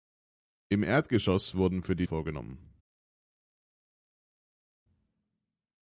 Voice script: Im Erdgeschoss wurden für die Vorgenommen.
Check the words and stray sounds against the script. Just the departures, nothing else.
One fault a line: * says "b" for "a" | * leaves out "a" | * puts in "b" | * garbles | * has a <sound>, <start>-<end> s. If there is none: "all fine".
all fine